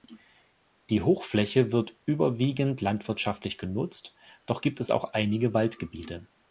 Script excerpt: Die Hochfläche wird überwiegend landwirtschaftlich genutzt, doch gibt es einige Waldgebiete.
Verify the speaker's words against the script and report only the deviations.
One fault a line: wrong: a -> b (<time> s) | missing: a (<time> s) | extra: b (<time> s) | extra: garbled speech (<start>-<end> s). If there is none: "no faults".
extra: auch (4.9 s)